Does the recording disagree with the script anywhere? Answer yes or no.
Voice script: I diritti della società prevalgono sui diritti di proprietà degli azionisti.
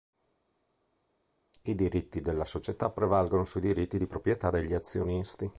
no